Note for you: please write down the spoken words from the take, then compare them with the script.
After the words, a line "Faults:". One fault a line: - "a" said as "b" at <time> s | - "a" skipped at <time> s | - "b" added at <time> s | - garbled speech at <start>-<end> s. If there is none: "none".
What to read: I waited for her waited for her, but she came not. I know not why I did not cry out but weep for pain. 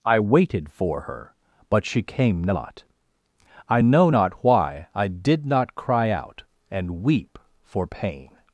I waited for her, but she came not. I know not why I did not cry out and weep for pain.
Faults:
- "waited for her" skipped at 1.4 s
- "but" said as "and" at 6.7 s